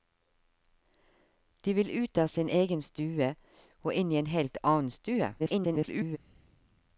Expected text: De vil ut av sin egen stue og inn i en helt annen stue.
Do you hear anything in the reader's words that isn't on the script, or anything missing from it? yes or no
yes